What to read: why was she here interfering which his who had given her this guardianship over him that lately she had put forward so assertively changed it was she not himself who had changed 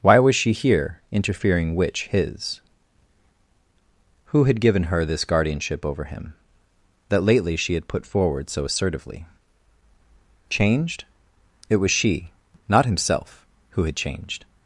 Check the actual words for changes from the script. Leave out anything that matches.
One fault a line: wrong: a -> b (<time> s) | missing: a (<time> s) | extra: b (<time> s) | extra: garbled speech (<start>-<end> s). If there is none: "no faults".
no faults